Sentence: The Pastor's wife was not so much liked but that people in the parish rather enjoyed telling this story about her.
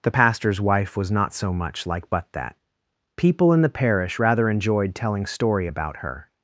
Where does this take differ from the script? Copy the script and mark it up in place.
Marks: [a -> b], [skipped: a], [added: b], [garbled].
The Pastor's wife was not so much [liked -> like] but that people in the parish rather enjoyed telling [skipped: this] story about her.